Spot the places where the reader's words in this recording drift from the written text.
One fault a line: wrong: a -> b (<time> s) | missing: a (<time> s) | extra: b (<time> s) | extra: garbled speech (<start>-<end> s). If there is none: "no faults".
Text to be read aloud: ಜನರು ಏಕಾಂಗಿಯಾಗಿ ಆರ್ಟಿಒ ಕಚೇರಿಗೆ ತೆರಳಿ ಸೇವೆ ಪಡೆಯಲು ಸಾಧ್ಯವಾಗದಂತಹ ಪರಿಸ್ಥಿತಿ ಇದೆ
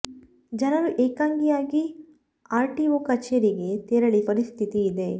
missing: ಸೇವೆ ಪಡೆಯಲು ಸಾಧ್ಯವಾಗದಂತಹ (4.2 s)